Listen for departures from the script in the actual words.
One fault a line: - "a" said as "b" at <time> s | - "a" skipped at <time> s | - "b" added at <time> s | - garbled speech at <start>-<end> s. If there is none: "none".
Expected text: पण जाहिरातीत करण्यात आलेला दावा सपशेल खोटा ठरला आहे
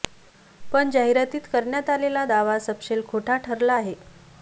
none